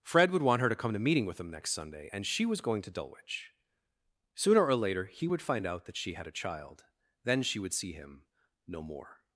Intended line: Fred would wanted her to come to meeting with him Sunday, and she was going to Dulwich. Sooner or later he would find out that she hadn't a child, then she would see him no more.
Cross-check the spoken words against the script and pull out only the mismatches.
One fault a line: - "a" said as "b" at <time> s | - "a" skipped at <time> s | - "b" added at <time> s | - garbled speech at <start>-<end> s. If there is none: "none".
- "wanted" said as "want" at 0.4 s
- "next" added at 1.5 s
- "hadn't" said as "had" at 6.1 s